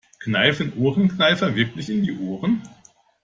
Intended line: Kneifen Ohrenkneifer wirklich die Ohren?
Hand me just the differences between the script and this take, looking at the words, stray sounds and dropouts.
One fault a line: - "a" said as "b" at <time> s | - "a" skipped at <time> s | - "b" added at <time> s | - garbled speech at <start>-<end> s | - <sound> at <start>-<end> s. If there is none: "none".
- "in" added at 1.9 s